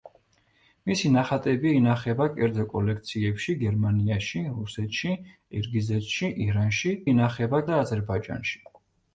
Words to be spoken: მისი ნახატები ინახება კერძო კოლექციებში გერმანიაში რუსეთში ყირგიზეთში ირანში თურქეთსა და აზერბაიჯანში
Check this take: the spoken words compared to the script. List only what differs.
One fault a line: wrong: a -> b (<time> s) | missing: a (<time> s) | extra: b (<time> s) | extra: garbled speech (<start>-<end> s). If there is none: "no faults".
wrong: თურქეთსა -> ინახება (7.1 s)